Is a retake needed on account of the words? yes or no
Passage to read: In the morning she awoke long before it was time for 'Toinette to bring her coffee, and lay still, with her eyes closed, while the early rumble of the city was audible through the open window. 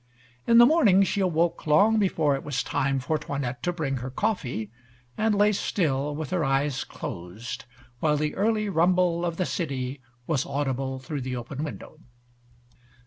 no